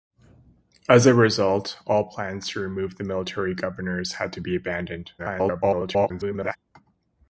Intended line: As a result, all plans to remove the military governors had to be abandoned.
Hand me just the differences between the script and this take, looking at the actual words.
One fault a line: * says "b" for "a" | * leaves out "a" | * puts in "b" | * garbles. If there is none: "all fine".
* garbles